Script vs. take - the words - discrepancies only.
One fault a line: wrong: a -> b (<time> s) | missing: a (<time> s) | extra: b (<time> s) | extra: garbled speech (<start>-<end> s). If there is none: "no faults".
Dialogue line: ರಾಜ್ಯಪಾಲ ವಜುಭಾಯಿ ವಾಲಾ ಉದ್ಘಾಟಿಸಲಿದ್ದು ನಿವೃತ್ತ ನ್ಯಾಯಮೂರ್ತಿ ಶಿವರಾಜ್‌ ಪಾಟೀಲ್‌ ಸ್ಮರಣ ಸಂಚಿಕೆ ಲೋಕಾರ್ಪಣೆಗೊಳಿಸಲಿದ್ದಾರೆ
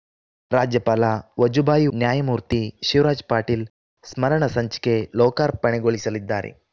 missing: ವಾಲಾ ಉದ್ಘಾಟಿಸಲಿದ್ದು ನಿವೃತ್ತ (1.9 s)